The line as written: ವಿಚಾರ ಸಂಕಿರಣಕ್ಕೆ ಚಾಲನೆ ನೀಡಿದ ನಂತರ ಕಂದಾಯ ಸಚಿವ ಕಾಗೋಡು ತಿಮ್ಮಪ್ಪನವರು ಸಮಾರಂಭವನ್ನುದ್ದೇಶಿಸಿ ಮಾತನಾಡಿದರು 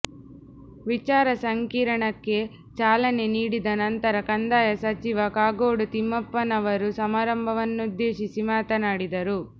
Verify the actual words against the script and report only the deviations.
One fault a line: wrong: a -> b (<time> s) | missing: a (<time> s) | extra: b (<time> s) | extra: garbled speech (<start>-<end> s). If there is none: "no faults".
no faults